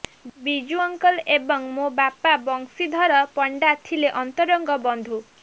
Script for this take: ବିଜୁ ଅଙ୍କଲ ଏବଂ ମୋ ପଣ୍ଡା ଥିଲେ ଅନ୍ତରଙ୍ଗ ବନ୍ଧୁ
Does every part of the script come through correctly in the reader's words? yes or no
no